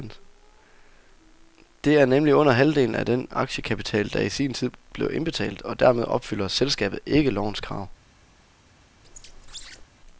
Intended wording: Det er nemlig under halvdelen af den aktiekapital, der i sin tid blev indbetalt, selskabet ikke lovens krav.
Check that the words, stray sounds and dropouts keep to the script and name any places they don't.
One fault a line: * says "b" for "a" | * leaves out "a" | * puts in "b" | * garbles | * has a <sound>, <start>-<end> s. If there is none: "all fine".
* puts in "og dermed opfylder"
* has a squeak, 9.0-9.9 s